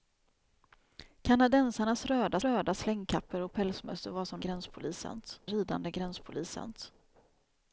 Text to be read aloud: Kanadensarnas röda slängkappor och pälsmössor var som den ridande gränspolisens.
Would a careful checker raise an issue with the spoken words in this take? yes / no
yes